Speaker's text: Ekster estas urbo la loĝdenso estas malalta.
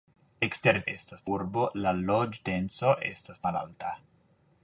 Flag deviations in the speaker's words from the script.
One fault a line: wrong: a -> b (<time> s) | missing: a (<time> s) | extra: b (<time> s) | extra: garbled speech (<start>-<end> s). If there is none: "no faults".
no faults